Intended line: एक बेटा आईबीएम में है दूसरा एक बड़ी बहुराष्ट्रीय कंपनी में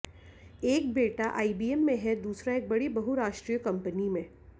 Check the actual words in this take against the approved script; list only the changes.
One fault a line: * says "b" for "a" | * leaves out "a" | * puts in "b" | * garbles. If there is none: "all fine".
all fine